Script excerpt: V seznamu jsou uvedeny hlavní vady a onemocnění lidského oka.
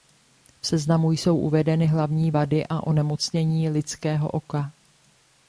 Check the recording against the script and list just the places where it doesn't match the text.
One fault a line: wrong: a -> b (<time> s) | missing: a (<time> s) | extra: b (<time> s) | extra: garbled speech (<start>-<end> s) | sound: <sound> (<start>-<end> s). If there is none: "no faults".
no faults